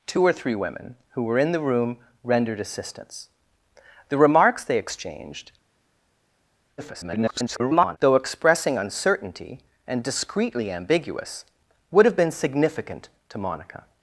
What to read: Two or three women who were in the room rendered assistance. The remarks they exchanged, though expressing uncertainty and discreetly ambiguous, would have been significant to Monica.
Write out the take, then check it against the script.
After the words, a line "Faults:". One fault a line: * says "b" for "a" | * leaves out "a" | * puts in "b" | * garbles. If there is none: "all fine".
Two or three women who were in the room rendered assistance. The remarks they exchanged, [garbled] though expressing uncertainty and discreetly ambiguous, would have been significant to Monica.
Faults:
* garbles